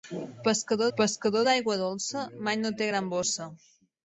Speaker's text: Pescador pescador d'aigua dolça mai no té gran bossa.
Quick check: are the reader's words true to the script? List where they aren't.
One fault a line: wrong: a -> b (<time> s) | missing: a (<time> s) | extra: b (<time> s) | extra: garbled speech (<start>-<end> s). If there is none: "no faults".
no faults